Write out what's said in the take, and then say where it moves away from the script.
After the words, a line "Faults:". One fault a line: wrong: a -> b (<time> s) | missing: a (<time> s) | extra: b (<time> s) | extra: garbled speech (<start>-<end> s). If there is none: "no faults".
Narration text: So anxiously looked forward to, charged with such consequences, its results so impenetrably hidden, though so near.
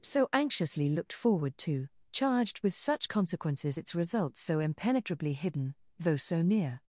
So anxiously looked forward to, charged with such consequences, its results so impenetrably hidden, though so near.
Faults:
no faults